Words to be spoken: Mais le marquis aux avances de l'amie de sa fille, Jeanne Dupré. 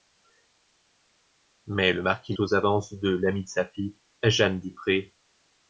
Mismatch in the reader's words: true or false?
false